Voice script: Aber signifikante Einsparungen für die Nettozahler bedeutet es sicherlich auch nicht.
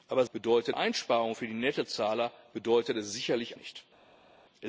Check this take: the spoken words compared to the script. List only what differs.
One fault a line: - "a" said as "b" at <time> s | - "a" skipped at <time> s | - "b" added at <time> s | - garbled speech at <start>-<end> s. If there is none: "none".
- "signifikante" said as "bedeutet" at 0.3 s
- "auch" skipped at 3.6 s